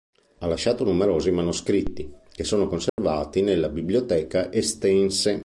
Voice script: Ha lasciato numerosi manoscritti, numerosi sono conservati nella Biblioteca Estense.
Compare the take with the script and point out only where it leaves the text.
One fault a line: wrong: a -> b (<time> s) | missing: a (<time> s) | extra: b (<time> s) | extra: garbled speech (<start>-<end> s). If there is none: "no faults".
wrong: numerosi -> che (2.3 s)